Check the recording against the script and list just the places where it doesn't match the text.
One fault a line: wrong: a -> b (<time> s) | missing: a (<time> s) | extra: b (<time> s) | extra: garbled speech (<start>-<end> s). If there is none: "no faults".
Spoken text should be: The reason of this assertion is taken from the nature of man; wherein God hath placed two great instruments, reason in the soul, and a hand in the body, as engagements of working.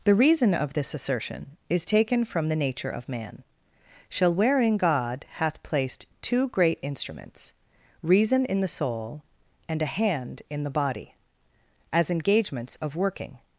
extra: shall (4.1 s)